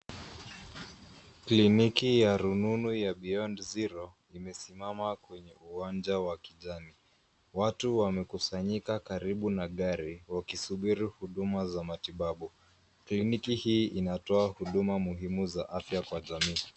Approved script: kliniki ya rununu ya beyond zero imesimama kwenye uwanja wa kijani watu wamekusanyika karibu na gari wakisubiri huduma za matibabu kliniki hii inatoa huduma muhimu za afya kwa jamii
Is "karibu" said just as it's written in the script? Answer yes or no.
yes